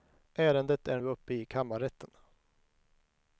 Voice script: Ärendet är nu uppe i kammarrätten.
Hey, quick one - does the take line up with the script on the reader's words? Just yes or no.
no